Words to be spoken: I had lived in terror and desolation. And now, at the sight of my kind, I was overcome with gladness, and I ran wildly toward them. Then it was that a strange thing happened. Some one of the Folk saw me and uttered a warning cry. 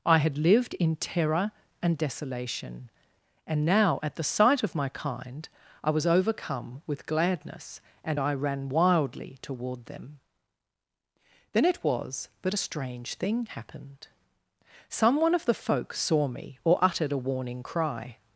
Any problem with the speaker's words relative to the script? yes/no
yes